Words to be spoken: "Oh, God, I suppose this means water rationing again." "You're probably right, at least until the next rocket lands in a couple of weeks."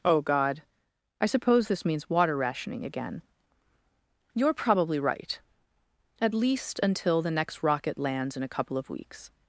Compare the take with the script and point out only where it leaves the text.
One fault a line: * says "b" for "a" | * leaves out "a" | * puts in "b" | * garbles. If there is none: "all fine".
all fine